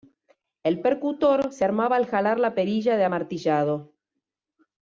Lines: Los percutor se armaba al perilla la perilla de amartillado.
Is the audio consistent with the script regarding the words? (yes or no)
no